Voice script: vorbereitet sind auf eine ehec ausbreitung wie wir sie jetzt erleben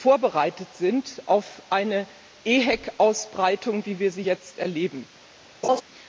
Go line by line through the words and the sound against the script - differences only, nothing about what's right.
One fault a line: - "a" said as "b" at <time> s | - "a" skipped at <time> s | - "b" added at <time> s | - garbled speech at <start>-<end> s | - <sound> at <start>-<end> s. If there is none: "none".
- laugh at 5.6-5.8 s